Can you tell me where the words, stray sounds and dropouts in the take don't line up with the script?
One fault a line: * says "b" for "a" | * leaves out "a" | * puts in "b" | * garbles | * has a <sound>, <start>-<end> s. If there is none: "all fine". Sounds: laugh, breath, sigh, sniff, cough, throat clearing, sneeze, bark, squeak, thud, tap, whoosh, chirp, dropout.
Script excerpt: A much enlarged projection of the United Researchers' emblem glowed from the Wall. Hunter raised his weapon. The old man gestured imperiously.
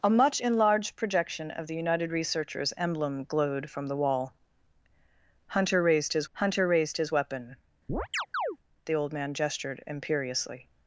* puts in "hunter raised his"
* has a chirp, 7.9-8.6 s